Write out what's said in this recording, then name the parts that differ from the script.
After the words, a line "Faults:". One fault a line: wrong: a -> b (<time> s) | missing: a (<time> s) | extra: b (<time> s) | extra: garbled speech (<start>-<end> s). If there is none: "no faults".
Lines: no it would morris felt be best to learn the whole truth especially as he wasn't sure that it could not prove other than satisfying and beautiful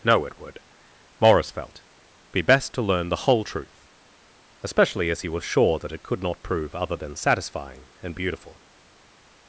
no it would morris felt be best to learn the whole truth especially as he was sure that it could not prove other than satisfying and beautiful
Faults:
wrong: wasn't -> was (5.3 s)